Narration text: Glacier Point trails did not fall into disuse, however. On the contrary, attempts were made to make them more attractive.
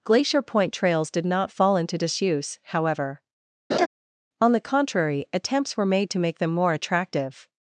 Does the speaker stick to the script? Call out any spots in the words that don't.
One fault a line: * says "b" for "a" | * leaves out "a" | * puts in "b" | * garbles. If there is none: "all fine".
all fine